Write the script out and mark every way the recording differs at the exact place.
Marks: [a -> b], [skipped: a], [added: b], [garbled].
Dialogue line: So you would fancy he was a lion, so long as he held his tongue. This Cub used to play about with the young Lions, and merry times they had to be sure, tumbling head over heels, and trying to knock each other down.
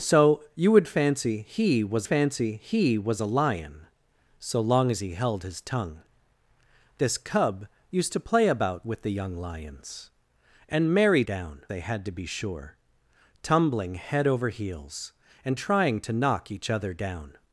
So you would fancy he was [added: fancy he was] a lion, so long as he held his tongue. This Cub used to play about with the young Lions, and merry [times -> down] they had to be sure, tumbling head over heels, and trying to knock each other down.